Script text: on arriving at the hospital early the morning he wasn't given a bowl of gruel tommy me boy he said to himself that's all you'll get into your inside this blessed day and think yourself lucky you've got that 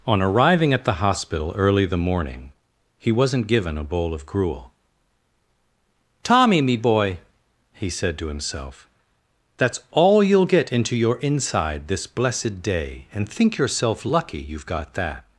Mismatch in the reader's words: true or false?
false